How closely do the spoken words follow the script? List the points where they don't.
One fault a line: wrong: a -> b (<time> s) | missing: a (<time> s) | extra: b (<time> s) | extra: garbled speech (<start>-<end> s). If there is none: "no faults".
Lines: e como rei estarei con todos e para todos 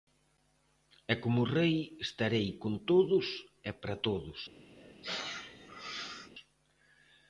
no faults